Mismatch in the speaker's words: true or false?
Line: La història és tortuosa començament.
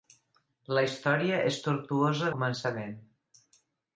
false